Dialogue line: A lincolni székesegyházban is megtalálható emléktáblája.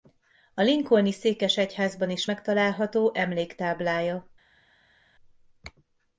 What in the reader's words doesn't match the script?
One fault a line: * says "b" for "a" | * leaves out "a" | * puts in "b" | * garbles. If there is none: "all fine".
all fine